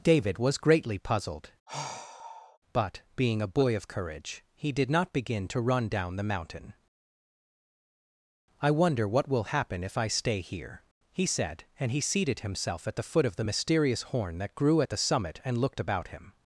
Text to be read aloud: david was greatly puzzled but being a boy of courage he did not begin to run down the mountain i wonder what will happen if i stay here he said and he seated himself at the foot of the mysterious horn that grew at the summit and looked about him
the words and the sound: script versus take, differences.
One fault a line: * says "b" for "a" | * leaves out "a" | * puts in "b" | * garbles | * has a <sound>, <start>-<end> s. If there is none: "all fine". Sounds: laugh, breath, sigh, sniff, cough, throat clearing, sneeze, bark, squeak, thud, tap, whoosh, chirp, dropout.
* has a sigh, 1.7-2.6 s